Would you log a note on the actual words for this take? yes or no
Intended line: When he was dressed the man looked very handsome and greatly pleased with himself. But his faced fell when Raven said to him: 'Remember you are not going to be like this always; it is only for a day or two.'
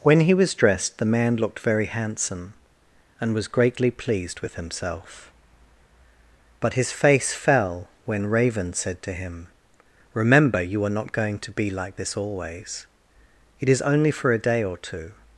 yes